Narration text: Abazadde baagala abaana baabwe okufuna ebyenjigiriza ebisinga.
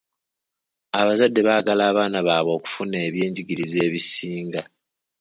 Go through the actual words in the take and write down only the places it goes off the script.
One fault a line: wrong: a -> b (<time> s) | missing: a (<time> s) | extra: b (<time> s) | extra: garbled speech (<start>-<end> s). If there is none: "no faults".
no faults